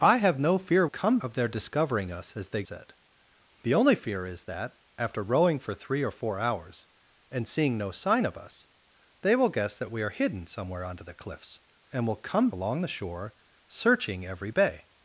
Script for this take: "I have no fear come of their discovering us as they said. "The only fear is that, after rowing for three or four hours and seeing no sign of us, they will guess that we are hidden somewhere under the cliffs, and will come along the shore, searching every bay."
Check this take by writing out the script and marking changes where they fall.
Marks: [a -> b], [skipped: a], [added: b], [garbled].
"I have no fear come of their discovering us as they said. "The only fear is that, after rowing for three or four hours and seeing no sign of us, they will guess that we are hidden somewhere under the cliffs, and will come along the shore, searching every bay."